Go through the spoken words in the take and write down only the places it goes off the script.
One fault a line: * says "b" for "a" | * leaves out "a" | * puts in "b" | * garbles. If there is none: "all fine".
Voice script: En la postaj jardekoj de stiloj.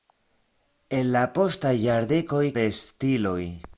all fine